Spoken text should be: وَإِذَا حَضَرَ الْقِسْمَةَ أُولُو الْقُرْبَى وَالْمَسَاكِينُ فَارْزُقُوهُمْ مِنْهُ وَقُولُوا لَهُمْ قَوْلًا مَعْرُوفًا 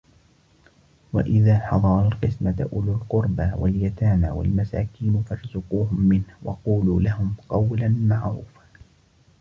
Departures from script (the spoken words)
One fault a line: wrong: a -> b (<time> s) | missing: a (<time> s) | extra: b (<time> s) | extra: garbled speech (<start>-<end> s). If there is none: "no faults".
extra: وَالْيَتَامَى (3.5 s)